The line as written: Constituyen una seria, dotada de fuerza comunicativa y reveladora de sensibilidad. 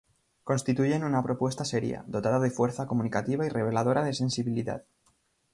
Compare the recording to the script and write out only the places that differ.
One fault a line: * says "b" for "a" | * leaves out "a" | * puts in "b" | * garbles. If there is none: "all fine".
* puts in "propuesta"